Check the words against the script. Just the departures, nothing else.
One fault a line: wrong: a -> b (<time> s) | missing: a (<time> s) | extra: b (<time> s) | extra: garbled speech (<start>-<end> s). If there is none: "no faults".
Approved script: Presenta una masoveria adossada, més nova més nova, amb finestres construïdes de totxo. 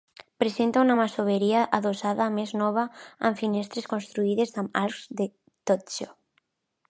missing: més nova (2.9 s)
extra: amb arcs (4.6 s)